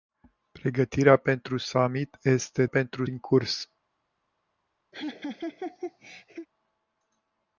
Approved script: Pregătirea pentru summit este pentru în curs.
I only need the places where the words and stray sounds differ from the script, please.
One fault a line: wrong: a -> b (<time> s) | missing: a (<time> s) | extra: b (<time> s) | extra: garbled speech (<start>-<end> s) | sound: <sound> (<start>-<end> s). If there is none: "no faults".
sound: laugh (4.9-6.5 s)